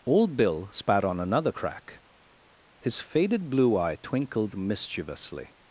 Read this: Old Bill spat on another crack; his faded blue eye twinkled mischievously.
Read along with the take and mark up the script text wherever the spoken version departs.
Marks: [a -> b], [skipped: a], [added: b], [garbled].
Old Bill spat on another crack; his faded blue eye twinkled mischievously.